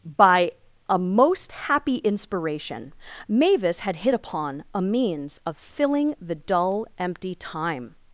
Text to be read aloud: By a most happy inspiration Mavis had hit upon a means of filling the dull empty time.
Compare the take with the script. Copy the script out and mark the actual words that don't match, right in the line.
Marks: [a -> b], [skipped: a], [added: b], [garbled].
By a most happy inspiration Mavis had hit upon a means of filling the dull empty time.